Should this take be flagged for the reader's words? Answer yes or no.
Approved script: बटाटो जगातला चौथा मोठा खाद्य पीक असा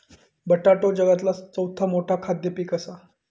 no